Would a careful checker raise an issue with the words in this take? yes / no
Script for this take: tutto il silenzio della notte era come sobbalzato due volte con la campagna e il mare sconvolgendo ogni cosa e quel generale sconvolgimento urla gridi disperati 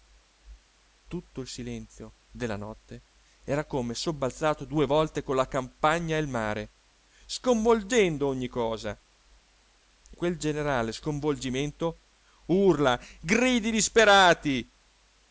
no